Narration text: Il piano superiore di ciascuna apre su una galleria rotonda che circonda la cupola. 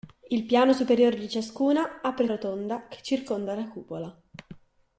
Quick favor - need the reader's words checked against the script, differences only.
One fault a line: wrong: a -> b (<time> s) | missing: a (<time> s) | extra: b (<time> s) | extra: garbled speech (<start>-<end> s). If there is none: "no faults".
missing: su una galleria (2.3 s)